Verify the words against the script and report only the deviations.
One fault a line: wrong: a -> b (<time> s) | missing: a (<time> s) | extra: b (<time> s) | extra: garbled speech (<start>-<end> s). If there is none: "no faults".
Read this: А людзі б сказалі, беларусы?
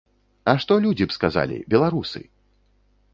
extra: што (0.6 s)